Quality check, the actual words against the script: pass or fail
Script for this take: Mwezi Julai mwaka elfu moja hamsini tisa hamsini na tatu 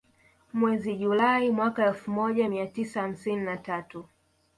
fail